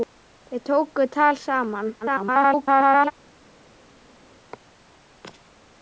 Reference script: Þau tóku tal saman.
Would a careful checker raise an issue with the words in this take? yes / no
yes